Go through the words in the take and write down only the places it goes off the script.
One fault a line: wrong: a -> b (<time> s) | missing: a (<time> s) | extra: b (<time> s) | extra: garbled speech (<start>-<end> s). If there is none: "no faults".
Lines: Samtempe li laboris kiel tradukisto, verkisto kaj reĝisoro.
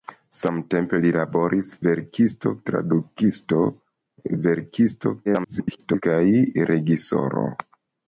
wrong: kiel -> verkisto (1.9 s)
extra: garbled speech (5.3-6.0 s)